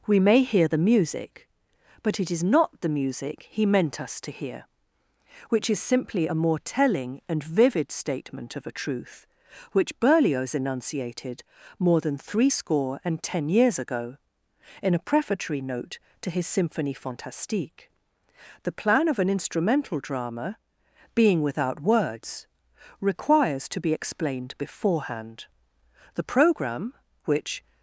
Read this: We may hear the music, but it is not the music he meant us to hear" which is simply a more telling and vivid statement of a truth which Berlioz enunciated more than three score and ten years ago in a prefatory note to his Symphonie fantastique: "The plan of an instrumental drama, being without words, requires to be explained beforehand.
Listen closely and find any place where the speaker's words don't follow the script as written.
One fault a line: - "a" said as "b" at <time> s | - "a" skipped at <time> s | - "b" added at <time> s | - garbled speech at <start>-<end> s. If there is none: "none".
- "The programme which" added at 26.2 s